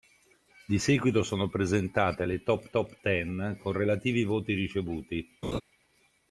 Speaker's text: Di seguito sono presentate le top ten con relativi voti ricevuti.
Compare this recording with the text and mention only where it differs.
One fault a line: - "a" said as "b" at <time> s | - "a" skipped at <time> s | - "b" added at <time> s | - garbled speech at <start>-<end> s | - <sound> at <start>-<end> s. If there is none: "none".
- "top" added at 2.7 s
- laugh at 5.4-5.6 s